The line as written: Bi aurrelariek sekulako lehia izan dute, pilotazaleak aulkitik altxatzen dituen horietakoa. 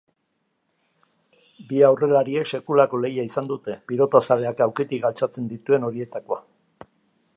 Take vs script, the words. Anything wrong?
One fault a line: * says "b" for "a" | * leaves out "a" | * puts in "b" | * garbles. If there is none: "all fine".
all fine